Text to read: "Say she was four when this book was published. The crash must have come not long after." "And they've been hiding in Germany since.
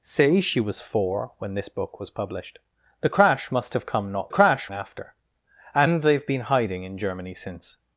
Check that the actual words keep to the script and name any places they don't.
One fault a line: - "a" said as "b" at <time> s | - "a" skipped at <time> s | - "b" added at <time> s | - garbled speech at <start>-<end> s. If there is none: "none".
- "long" said as "crash" at 4.3 s